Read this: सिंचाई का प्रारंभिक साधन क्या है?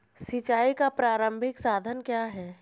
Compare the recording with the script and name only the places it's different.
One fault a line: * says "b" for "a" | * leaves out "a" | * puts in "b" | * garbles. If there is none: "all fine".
all fine